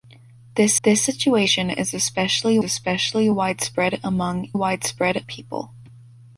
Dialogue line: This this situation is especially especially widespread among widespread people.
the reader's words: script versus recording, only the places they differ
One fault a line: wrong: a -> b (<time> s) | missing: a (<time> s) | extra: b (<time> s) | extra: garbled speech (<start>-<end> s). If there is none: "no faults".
no faults